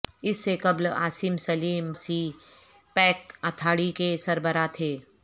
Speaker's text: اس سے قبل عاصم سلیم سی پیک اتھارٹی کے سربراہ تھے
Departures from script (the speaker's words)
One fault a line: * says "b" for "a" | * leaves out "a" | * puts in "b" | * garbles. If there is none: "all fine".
all fine